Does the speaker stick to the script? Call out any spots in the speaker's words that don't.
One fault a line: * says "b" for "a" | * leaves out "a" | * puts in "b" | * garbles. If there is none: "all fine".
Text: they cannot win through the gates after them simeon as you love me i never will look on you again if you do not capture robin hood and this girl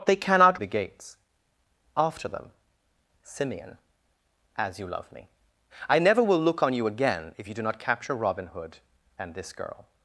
* leaves out "win through"